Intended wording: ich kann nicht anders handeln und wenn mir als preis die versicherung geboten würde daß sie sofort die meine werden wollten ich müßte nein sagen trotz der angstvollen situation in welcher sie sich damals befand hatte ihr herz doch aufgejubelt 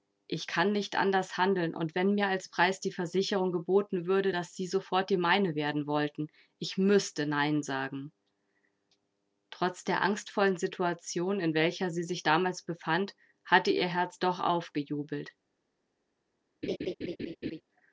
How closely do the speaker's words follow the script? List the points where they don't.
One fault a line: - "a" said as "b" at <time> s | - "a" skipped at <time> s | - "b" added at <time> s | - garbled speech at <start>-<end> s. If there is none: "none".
none